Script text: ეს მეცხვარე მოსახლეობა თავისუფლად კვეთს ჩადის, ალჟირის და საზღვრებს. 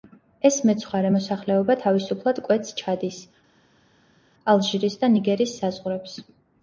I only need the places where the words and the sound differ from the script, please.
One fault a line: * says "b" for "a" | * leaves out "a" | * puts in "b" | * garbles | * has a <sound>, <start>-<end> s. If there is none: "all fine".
* puts in "ნიგერის"